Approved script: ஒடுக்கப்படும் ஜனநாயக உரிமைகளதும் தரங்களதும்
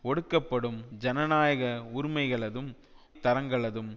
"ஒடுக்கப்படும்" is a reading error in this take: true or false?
false